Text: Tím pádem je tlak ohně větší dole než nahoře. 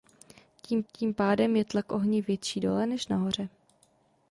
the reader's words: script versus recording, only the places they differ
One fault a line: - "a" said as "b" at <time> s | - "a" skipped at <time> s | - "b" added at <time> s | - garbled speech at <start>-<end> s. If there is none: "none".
- "tím" added at 0.9 s